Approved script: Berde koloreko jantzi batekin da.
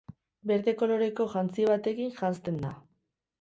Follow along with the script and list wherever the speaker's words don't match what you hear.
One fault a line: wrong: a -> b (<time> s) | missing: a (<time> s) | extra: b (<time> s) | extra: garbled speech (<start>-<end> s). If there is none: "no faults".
extra: janzten (2.2 s)